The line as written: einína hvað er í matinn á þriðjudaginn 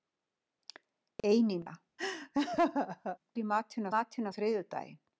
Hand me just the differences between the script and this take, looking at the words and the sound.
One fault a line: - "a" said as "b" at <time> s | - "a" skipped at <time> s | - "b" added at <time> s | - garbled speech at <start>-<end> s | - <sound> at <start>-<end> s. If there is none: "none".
- "hvað" skipped at 1.8 s
- laugh at 2.0-3.2 s
- "matinn" added at 4.0 s